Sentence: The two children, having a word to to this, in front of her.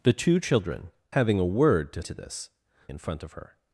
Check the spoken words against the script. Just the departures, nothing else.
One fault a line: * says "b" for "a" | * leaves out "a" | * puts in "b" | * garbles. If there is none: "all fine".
all fine